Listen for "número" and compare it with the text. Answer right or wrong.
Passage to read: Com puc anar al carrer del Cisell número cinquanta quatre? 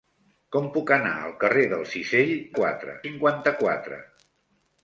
wrong